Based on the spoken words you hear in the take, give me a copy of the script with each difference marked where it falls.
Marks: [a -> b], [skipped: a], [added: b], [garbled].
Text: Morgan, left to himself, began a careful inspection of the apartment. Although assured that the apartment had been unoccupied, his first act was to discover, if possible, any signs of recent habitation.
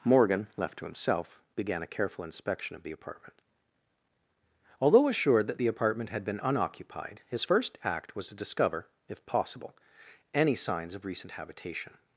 Morgan, left to himself, began a careful inspection of the apartment. Although assured that the apartment had been unoccupied, his first act was to discover, if possible, any signs of recent habitation.